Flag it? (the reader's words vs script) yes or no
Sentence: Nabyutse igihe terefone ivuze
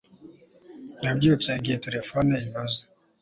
no